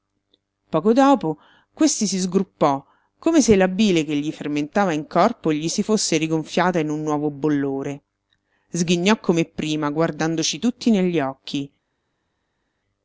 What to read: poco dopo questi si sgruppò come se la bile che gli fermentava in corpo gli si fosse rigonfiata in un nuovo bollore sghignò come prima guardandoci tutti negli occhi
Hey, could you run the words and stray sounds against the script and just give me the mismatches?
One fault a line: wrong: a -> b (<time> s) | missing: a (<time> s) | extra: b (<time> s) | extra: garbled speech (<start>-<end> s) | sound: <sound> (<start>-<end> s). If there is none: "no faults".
no faults